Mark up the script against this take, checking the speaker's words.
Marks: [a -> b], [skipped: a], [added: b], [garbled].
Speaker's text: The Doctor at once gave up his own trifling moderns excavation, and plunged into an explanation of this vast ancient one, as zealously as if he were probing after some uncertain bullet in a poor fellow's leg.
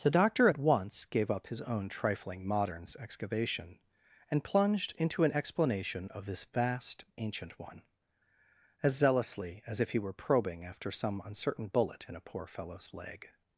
The Doctor at once gave up his own trifling moderns excavation, and plunged into an explanation of this vast ancient one, as zealously as if he were probing after some uncertain bullet in a poor fellow's leg.